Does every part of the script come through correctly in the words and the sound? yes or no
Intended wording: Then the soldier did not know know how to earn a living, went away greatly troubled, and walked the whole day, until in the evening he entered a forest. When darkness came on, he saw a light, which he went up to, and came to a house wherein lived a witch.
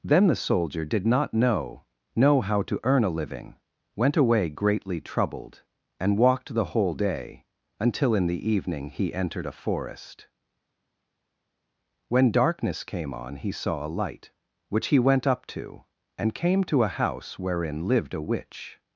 yes